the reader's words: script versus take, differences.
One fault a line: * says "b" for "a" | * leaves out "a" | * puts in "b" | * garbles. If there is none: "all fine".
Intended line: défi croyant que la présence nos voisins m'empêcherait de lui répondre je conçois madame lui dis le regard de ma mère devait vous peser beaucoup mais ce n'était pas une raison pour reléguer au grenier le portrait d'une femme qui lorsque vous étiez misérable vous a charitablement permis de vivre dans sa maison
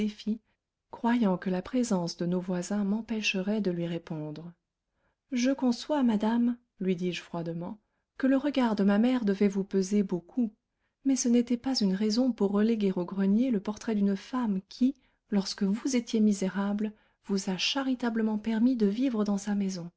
* puts in "de"
* puts in "je froidement que"